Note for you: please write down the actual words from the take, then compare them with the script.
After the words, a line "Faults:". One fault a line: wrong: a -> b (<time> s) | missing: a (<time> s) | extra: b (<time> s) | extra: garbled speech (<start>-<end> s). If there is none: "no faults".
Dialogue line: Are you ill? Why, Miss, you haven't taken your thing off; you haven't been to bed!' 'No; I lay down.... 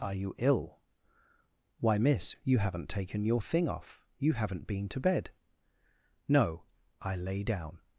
Are you ill? Why, Miss, you haven't taken your thing off; you haven't been to bed!' 'No; I lay down....
Faults:
no faults